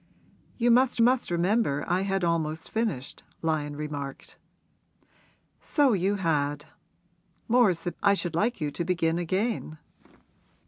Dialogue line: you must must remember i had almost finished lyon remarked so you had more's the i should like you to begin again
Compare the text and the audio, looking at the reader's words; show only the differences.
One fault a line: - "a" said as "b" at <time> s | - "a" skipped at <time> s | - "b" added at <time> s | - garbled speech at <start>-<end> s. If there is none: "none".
none